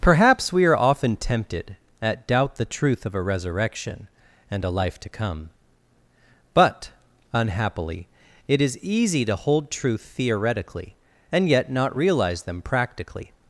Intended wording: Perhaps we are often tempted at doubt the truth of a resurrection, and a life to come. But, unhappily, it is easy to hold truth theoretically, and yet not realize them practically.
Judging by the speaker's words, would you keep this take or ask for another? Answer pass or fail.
pass